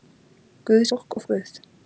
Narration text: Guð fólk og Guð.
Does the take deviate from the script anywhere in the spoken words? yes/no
no